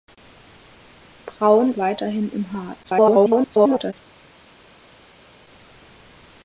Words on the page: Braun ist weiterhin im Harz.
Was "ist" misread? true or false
true